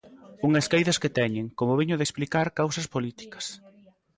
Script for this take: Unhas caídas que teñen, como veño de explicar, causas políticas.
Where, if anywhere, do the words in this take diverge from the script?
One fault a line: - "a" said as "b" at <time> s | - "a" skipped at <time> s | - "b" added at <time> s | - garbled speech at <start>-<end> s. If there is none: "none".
none